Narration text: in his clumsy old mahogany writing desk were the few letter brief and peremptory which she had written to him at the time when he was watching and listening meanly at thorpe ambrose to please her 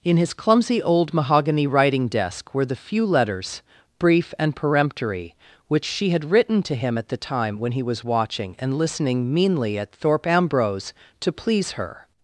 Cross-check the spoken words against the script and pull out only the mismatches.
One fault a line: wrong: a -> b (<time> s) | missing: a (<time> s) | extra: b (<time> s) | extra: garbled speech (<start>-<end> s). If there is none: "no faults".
wrong: letter -> letters (3.0 s)